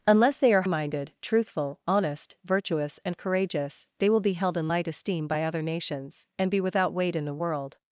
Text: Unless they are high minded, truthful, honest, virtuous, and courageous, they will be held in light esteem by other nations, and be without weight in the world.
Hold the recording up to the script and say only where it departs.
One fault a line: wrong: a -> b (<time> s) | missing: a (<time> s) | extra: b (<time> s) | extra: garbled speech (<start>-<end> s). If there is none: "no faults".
missing: high (0.6 s)